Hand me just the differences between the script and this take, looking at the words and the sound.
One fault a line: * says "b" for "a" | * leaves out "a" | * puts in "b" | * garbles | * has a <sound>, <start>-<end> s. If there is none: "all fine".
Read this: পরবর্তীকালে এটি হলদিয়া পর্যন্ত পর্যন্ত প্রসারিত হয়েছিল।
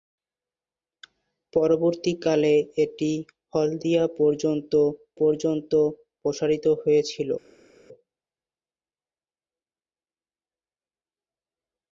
all fine